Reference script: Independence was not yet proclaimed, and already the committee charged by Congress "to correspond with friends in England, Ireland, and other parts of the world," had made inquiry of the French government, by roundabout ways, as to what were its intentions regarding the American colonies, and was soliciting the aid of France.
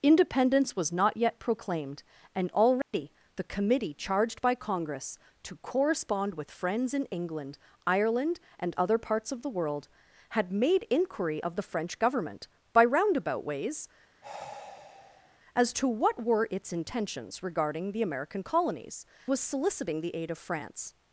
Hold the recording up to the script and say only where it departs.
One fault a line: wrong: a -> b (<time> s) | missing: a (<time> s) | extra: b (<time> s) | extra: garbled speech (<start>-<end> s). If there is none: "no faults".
missing: and (19.0 s)